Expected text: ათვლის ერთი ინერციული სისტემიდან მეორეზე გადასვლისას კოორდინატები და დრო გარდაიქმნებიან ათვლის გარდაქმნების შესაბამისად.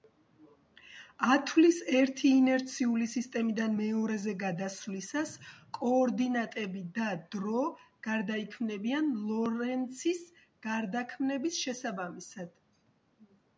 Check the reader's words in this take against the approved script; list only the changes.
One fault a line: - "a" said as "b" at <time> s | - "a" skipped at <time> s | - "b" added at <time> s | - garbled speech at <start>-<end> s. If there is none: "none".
- "ათვლის" said as "ლორენცის" at 9.3 s